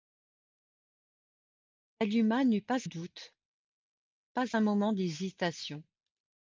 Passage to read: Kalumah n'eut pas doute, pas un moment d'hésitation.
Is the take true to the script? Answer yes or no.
yes